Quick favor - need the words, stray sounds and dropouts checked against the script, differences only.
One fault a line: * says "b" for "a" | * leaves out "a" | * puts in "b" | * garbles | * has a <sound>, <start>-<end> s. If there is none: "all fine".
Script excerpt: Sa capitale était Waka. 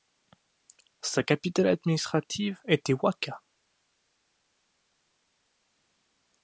* puts in "administrative"